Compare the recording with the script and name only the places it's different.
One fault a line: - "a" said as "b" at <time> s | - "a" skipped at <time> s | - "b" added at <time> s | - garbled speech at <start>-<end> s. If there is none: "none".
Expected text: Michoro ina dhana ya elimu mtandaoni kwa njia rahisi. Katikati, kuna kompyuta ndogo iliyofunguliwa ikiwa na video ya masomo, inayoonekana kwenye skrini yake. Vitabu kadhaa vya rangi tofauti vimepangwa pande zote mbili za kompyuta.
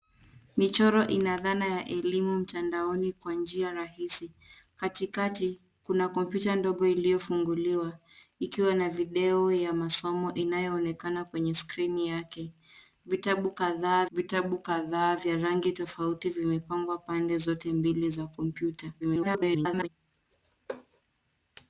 - "vitabu kadhaa" added at 14.1 s
- garbled speech at 19.0-19.9 s